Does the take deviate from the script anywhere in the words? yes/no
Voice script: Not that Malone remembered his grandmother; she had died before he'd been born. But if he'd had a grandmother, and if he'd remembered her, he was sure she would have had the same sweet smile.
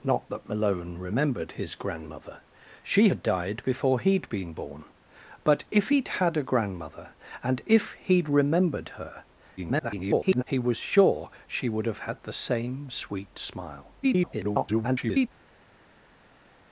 yes